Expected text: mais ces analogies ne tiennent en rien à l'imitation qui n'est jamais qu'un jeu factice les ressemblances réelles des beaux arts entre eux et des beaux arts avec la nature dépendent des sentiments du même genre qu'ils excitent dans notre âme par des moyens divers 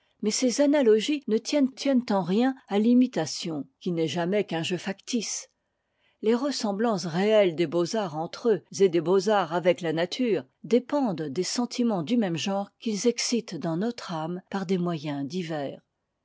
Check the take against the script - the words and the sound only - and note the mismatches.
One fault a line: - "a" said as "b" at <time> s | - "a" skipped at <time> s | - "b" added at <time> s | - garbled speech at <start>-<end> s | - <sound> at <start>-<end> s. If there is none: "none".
- "tiennent" added at 1.7 s